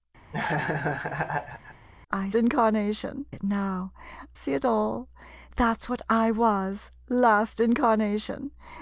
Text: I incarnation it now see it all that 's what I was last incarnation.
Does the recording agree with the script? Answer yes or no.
yes